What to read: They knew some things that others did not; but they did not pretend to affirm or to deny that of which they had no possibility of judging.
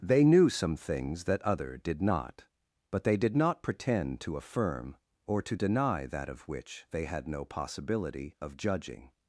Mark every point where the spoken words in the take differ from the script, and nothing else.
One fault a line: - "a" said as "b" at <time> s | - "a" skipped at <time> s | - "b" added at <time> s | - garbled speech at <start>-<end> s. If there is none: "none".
- "others" said as "other" at 1.4 s